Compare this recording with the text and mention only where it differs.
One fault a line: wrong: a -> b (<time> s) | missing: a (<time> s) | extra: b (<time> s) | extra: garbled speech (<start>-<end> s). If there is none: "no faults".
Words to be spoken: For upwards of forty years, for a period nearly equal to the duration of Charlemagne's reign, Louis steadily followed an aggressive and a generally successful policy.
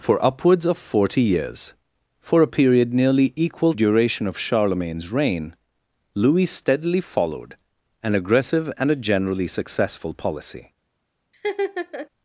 missing: to the (3.7 s)